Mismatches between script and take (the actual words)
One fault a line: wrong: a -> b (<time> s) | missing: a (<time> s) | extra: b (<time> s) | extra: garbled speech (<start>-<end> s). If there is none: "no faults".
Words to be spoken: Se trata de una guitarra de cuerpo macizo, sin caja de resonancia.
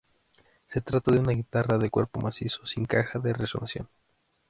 no faults